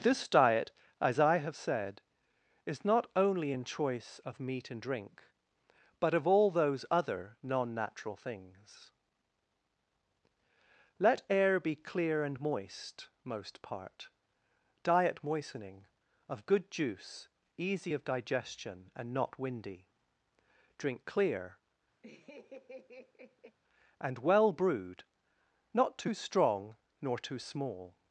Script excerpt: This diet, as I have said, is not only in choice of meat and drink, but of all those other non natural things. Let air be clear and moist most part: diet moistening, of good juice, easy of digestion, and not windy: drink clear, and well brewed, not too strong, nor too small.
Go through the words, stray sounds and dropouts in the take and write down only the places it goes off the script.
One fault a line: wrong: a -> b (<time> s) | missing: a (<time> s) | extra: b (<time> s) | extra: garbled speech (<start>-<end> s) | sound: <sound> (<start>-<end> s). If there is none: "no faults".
sound: laugh (22.0-23.6 s)